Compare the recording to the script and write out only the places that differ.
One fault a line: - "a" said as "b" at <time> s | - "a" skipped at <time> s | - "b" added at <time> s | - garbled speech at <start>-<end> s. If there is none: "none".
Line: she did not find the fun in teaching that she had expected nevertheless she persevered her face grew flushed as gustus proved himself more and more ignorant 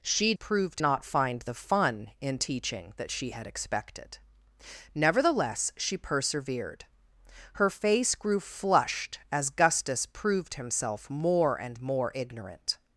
- "did" said as "proved" at 0.3 s